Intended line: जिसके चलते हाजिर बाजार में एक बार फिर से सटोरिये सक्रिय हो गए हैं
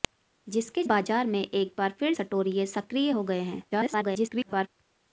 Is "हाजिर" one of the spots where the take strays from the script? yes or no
yes